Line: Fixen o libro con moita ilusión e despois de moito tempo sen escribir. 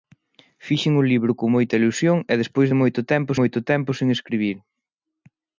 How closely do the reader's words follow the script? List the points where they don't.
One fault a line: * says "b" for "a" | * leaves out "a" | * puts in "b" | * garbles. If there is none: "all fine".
* puts in "moito tempo"